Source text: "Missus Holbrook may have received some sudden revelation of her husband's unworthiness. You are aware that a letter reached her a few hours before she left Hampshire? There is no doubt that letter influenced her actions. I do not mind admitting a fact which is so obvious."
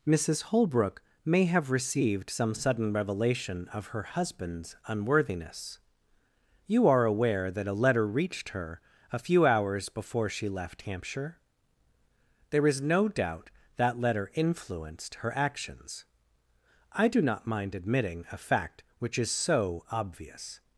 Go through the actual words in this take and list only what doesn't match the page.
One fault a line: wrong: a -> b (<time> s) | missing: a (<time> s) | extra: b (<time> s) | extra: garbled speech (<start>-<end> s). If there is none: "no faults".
no faults